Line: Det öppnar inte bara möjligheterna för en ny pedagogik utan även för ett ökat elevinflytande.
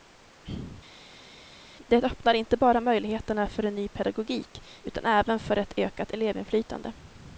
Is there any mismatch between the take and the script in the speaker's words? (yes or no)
no